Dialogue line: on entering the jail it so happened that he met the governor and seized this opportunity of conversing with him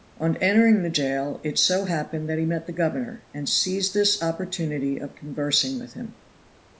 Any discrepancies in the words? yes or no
no